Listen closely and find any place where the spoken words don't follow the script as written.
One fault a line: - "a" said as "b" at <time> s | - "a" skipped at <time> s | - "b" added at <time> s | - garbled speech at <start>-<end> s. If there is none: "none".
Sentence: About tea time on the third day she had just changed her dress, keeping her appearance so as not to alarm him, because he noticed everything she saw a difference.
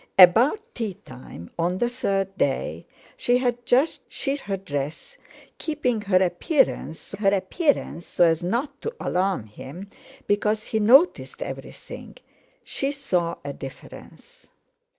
- "changed" said as "she" at 4.1 s
- "her appearance so" added at 7.1 s